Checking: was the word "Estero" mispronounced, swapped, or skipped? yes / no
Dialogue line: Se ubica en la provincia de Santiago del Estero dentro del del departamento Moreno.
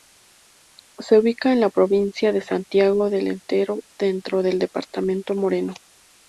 no